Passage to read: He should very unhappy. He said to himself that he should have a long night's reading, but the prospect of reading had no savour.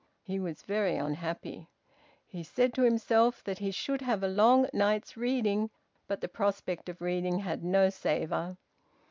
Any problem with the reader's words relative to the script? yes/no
yes